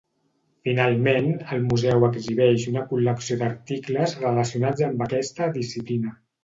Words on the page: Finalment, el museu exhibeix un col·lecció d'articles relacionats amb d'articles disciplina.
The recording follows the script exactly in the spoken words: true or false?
false